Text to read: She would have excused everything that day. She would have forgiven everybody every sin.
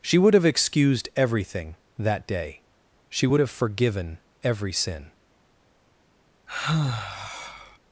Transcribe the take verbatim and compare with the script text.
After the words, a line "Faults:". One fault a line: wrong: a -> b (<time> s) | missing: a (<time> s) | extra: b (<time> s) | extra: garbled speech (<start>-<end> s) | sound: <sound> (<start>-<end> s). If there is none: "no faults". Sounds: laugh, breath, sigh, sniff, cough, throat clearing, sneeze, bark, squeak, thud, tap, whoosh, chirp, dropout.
She would have excused everything that day. She would have forgiven every sin.
Faults:
missing: everybody (4.2 s)
sound: sigh (6.5-7.8 s)